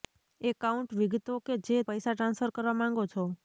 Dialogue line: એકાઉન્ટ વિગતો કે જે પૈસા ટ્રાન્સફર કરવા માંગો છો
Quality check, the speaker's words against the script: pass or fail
pass